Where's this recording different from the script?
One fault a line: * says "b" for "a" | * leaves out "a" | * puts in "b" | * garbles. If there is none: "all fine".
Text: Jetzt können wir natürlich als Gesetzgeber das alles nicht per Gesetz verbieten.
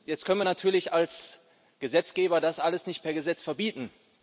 all fine